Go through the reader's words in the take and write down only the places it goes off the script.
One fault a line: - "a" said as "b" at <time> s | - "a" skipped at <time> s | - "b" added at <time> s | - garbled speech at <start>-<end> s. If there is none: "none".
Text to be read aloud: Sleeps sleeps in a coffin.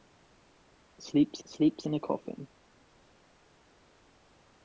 none